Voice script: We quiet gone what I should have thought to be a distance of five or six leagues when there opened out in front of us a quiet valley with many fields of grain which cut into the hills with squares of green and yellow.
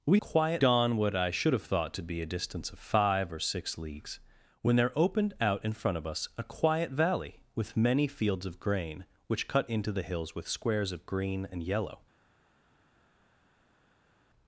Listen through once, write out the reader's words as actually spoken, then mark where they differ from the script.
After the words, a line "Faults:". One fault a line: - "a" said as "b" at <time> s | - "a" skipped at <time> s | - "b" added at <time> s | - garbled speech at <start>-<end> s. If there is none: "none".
We quiet gone what I should have thought to be a distance of five or six leagues when there opened out in front of us a quiet valley with many fields of grain which cut into the hills with squares of green and yellow.
Faults:
none